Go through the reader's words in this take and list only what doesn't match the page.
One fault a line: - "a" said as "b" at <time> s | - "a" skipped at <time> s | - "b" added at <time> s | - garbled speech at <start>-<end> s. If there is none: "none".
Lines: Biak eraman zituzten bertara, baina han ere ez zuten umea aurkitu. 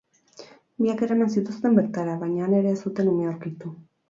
none